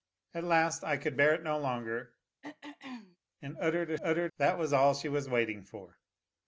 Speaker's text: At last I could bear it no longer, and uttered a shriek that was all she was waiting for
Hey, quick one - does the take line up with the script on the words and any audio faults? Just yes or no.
no